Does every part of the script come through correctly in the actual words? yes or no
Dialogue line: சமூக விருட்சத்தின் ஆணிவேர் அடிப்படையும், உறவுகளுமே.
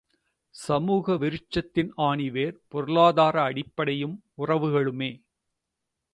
no